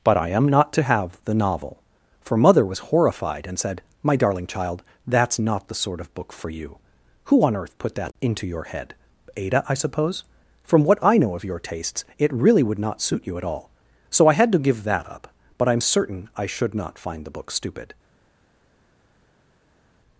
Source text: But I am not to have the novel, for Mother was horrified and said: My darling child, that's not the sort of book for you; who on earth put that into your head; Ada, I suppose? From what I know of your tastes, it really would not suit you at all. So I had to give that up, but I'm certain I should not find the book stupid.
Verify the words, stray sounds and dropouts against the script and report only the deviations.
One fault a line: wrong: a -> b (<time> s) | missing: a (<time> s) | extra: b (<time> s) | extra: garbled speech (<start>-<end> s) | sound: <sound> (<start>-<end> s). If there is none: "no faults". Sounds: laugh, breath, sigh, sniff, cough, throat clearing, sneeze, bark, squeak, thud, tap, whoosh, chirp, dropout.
no faults